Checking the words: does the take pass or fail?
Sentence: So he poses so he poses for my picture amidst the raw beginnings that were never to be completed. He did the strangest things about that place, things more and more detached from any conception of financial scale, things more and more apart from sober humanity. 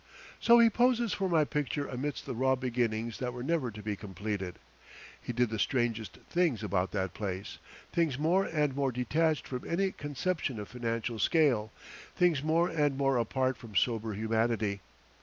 fail